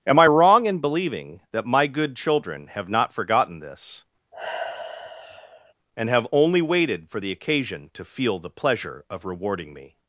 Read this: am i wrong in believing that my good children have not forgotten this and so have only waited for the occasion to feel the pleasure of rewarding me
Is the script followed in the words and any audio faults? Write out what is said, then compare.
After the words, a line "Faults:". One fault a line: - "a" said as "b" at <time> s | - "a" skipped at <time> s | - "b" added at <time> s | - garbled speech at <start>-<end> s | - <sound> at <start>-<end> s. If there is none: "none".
am i wrong in believing that my good children have not forgotten this and have only waited for the occasion to feel the pleasure of rewarding me
Faults:
- sigh at 4.3-5.7 s
- "so" skipped at 6.1 s